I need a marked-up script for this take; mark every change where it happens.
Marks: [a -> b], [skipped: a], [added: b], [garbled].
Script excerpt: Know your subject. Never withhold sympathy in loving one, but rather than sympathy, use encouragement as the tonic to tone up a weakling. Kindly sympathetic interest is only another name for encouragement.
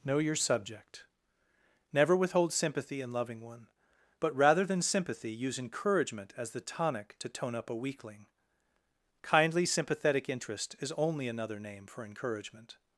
Know your subject. Never withhold sympathy in loving one, but rather than sympathy, use encouragement as the tonic to tone up a weakling. Kindly sympathetic interest is only another name for encouragement.